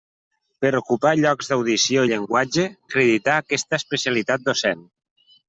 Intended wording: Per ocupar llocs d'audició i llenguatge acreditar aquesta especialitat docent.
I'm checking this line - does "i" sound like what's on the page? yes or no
yes